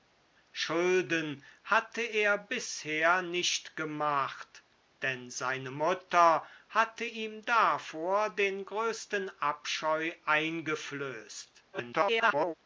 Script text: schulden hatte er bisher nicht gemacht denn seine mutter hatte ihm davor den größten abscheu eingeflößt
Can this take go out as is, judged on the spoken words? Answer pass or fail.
fail